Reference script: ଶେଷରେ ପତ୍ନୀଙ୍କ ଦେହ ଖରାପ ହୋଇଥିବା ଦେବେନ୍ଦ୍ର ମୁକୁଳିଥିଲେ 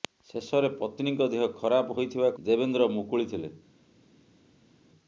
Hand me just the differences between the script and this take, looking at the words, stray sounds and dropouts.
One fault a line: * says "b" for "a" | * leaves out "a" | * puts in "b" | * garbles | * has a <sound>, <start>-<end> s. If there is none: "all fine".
all fine